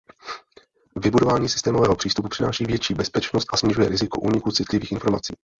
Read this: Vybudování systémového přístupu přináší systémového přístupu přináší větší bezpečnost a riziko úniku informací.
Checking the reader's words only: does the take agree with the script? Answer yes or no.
no